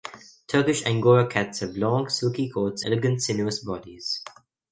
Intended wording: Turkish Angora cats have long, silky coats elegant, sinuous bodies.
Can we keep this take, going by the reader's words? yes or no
yes